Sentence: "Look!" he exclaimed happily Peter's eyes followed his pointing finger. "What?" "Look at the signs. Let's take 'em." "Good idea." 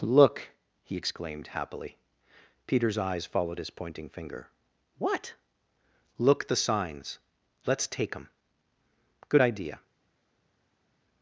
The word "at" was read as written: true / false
false